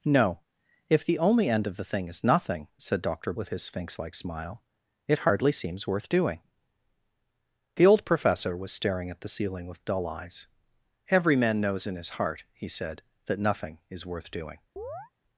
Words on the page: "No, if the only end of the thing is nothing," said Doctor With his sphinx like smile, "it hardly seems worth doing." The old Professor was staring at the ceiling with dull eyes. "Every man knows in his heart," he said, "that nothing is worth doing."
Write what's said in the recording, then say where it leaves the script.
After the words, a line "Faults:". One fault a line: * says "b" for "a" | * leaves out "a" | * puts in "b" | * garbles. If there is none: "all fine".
"No, if the only end of the thing is nothing," said Doctor With his sphinx like smile, "it hardly seems worth doing." The old Professor was staring at the ceiling with dull eyes. "Every man knows in his heart," he said, "that nothing is worth doing."
Faults:
all fine